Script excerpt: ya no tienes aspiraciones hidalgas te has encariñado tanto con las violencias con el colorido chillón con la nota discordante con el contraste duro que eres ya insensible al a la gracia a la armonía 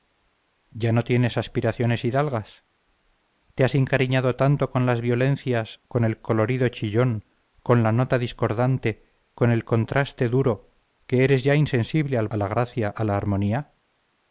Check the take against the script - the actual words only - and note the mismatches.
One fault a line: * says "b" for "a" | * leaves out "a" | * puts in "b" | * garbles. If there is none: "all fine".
all fine